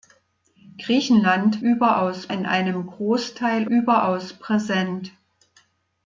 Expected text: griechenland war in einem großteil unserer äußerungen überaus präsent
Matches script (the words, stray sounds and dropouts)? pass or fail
fail